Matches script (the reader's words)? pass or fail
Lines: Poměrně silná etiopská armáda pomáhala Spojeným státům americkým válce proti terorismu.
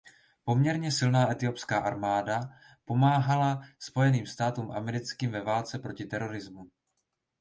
fail